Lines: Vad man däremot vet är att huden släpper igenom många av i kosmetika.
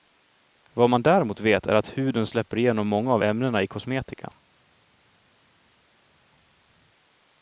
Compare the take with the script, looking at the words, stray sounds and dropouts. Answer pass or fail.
fail